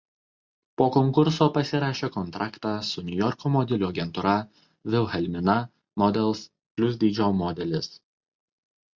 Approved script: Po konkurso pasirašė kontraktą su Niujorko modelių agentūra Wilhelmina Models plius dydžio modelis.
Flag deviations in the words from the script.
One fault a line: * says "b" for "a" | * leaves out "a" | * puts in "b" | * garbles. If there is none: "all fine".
all fine